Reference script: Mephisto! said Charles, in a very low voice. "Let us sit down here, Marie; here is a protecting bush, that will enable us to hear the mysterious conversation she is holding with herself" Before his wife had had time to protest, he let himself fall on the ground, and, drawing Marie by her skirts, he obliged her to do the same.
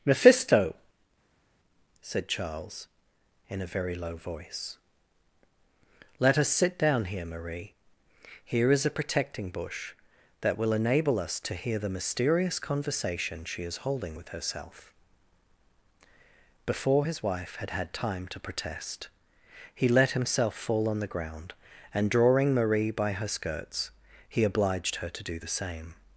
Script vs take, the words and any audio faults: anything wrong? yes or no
no